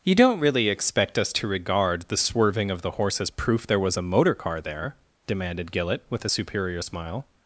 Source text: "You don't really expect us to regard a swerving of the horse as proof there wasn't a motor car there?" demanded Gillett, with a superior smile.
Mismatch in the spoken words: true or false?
true